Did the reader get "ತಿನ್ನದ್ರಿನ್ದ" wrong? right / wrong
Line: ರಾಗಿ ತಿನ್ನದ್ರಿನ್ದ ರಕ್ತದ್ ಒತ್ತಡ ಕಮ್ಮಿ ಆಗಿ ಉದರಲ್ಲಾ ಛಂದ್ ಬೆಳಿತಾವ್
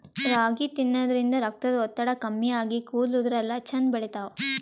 right